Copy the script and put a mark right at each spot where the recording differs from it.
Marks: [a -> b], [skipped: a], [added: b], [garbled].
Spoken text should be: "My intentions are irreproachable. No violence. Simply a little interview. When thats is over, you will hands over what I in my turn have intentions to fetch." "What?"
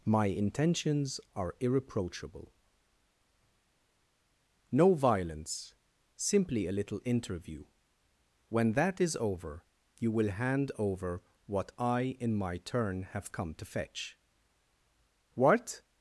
"My intentions are irreproachable. No violence. Simply a little interview. When [thats -> that] is over, you will [hands -> hand] over what I in my turn have [intentions -> come] to fetch." "What?"